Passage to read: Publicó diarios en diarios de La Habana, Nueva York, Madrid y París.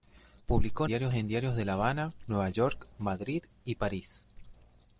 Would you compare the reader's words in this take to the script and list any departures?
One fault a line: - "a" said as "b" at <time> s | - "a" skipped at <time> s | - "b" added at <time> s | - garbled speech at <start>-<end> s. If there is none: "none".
none